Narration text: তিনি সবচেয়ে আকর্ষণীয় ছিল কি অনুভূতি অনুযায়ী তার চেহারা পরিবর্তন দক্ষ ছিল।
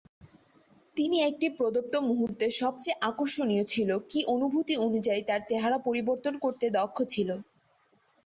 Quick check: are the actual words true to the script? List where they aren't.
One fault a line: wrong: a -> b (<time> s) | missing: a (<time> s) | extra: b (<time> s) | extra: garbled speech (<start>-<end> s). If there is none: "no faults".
extra: একটি প্রদত্ত মুহূর্তে (1.2 s)
extra: করতে (6.4 s)